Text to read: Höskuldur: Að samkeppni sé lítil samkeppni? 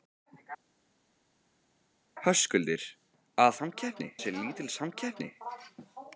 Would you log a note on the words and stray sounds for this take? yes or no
no